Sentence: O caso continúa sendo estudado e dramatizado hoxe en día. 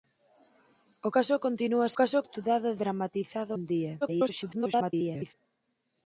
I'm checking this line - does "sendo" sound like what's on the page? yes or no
no